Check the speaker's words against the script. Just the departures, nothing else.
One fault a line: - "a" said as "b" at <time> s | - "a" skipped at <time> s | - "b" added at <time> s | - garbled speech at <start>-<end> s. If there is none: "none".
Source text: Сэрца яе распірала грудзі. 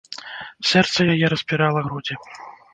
none